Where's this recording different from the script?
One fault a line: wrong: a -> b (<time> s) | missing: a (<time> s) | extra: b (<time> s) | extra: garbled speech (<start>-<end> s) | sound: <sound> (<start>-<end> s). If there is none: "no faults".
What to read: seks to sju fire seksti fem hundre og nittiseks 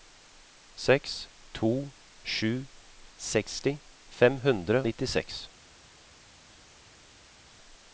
missing: fire (2.6 s)
missing: og (4.8 s)